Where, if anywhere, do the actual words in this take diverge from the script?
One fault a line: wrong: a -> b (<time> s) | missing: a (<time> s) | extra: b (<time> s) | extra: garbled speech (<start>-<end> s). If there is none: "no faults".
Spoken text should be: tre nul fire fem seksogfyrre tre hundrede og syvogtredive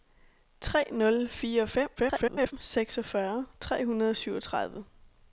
extra: garbled speech (2.0-2.5 s)